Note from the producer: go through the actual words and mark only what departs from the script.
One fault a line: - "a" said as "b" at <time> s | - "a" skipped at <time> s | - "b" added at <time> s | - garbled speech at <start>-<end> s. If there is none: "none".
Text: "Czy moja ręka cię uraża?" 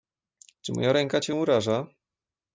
none